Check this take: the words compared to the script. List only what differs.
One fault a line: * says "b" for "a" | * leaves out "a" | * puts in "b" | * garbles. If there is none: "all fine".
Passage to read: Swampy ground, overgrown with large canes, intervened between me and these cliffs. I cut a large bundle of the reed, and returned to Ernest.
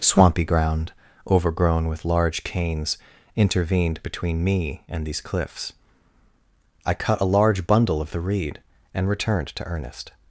all fine